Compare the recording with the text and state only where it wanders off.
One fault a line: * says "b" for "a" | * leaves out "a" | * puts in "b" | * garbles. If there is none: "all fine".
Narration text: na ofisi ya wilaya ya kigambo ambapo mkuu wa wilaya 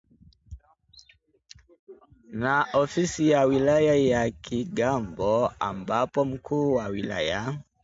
all fine